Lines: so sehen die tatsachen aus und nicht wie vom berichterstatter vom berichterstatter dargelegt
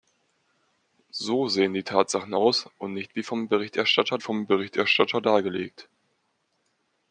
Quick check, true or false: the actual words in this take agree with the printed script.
true